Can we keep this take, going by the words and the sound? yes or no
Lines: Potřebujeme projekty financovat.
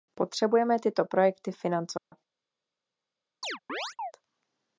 no